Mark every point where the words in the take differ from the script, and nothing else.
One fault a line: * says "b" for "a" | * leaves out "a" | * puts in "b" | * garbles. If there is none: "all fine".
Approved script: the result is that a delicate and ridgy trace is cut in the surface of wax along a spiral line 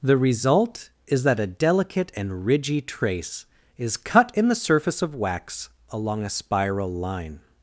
all fine